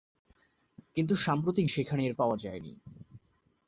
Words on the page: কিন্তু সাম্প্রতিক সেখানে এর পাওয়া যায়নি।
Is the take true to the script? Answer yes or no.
yes